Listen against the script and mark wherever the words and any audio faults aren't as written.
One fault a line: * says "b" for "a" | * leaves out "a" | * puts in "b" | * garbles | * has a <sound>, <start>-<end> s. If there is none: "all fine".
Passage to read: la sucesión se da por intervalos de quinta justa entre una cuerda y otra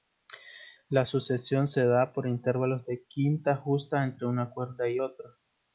all fine